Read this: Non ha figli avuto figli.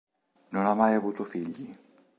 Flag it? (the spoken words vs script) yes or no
yes